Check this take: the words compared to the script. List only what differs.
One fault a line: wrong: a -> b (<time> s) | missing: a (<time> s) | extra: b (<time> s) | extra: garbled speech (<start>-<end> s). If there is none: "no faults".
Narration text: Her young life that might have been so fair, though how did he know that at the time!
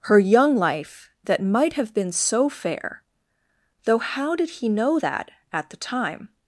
no faults